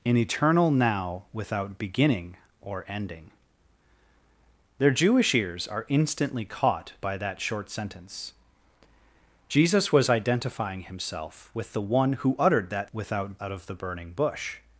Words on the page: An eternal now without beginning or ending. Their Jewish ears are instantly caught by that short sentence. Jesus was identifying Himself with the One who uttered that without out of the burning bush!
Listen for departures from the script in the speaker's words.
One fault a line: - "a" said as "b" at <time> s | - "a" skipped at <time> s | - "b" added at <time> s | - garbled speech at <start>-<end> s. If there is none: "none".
none